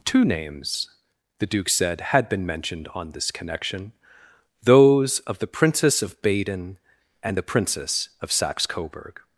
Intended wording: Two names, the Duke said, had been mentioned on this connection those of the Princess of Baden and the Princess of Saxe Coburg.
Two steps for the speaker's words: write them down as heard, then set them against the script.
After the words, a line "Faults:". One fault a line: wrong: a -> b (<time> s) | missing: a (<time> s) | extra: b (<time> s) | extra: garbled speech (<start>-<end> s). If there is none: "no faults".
Two names, the Duke said, had been mentioned on this connection those of the Princess of Baden and the Princess of Saxe Coburg.
Faults:
no faults